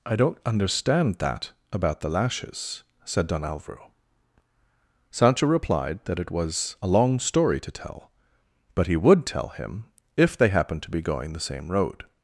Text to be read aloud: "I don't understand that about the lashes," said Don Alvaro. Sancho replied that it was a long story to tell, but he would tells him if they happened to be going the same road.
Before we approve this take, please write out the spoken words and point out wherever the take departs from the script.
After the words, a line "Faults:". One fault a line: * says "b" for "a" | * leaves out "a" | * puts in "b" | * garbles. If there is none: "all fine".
"I don't understand that about the lashes," said Don Alvaro. Sancho replied that it was a long story to tell, but he would tell him if they happened to be going the same road.
Faults:
* says "tell" for "tells"